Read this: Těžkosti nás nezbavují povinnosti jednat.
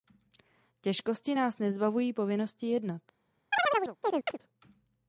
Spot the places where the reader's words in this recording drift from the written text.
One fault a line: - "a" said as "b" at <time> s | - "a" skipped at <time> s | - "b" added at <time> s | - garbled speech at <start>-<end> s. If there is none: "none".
none